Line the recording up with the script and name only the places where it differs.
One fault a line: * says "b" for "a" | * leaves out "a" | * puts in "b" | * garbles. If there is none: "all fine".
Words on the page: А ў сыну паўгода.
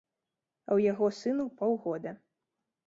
* puts in "яго"